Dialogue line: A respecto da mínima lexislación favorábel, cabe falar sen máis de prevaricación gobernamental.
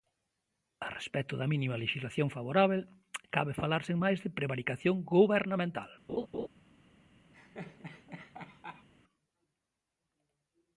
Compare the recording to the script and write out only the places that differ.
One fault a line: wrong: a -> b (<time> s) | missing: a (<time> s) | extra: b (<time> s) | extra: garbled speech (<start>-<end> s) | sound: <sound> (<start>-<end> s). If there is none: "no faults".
sound: laugh (6.1-6.5 s)
sound: laugh (7.3-8.9 s)